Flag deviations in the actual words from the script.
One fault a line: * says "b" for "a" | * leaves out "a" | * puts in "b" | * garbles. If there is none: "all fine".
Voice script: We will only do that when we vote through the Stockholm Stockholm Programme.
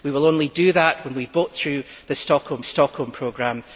all fine